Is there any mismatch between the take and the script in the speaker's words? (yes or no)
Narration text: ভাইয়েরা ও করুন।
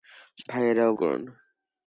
no